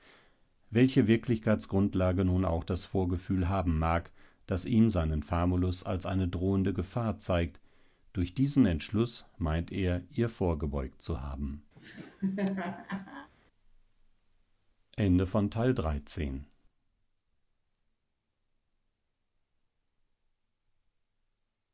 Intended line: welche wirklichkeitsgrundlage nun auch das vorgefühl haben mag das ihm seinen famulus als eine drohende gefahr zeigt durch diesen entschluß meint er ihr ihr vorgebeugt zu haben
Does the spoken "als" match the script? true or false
true